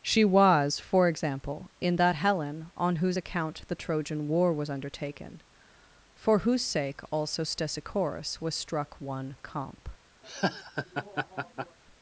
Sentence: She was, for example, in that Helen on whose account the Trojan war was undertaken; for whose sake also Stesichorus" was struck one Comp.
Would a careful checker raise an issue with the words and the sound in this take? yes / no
yes